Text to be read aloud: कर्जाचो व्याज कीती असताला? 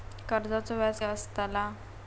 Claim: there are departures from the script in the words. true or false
true